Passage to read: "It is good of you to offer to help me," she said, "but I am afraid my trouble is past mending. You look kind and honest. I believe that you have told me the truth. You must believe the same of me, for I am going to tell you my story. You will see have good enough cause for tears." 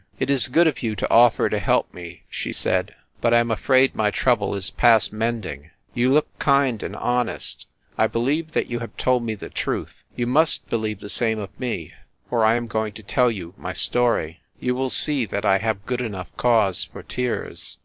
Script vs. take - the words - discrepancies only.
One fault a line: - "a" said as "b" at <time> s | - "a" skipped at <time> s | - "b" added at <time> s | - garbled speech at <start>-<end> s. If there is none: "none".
- "that I" added at 15.3 s